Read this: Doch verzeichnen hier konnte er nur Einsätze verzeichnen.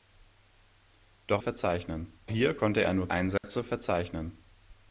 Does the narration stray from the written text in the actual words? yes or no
no